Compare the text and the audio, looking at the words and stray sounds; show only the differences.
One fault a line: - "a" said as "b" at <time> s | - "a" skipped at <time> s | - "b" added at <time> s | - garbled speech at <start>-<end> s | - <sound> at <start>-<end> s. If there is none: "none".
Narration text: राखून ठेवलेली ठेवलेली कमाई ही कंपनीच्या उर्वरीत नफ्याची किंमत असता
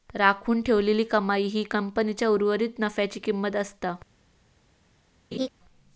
- "ठेवलेली" skipped at 1.0 s
- laugh at 5.3-5.5 s